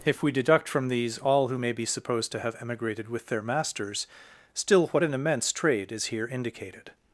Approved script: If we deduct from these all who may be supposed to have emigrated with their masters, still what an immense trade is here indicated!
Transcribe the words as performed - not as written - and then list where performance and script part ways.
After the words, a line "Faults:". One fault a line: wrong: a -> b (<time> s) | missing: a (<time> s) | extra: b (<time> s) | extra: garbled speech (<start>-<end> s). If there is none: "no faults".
If we deduct from these all who may be supposed to have emigrated with their masters, still what an immense trade is here indicated!
Faults:
no faults